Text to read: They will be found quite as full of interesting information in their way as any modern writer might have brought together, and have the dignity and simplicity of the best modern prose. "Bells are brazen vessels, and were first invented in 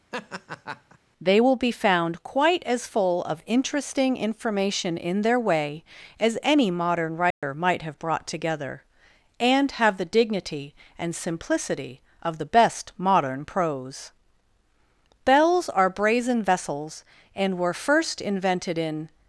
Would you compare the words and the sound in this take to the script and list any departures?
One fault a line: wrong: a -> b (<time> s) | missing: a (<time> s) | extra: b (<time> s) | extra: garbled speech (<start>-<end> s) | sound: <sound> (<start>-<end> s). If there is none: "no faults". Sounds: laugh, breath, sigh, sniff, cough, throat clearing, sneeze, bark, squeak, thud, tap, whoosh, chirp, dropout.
sound: laugh (0.1-1.0 s)
sound: dropout (7.3-7.4 s)